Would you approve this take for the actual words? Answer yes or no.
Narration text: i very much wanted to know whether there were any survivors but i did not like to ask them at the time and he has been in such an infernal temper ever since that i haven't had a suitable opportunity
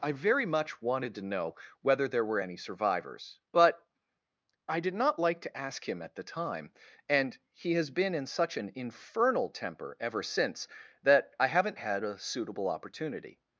no